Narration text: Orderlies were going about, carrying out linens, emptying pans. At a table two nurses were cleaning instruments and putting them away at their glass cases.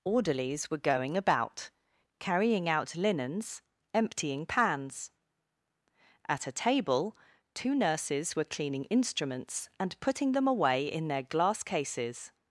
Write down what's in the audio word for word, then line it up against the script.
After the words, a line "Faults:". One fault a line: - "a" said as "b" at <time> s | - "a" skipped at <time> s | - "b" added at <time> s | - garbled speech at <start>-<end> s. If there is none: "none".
Orderlies were going about, carrying out linens, emptying pans. At a table two nurses were cleaning instruments and putting them away in their glass cases.
Faults:
- "at" said as "in" at 10.9 s